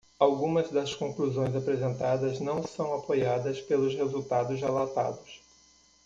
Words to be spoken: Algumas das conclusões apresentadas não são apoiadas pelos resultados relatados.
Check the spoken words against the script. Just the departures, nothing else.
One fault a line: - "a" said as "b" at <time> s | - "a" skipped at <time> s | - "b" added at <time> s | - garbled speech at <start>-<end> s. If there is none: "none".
none